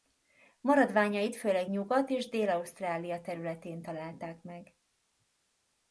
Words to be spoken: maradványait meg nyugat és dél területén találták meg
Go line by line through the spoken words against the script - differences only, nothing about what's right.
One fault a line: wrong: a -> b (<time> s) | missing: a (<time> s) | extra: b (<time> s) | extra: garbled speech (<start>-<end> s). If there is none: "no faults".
wrong: meg -> főleg (1.4 s)
extra: ausztrália (2.5 s)